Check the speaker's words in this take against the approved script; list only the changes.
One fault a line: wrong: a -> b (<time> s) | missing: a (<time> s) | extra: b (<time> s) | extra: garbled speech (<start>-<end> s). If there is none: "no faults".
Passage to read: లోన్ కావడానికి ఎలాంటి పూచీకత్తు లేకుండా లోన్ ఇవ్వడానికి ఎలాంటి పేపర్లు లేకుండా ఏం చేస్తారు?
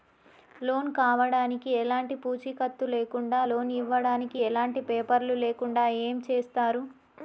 no faults